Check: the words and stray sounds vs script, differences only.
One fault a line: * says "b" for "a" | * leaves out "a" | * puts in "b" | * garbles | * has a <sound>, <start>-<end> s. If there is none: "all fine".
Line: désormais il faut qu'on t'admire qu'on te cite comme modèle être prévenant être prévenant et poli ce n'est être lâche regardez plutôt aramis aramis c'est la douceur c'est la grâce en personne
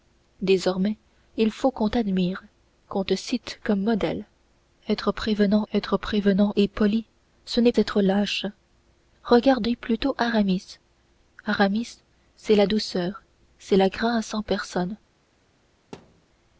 * has a thud, 15.9-16.3 s